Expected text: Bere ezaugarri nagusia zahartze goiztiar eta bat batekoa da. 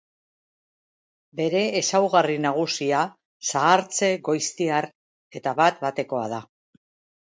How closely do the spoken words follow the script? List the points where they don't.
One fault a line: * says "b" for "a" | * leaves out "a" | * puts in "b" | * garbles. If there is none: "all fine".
all fine